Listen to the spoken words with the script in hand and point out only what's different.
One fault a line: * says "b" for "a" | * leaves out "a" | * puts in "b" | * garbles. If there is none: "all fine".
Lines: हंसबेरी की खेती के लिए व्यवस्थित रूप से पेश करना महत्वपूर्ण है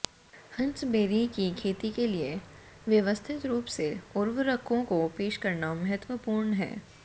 * puts in "उर्वरकों को"